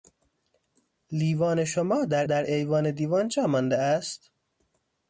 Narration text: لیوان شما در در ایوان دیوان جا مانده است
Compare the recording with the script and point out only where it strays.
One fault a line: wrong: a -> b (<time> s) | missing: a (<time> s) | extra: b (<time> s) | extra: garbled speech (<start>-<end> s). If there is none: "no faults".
no faults